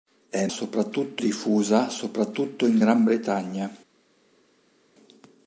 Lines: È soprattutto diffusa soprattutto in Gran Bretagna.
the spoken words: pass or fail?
pass